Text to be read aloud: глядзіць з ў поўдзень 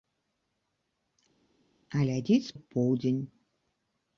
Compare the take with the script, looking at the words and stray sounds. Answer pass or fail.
pass